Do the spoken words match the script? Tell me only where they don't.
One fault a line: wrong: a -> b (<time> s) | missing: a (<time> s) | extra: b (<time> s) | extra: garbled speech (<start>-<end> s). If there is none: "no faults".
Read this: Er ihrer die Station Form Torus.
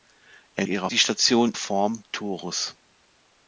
no faults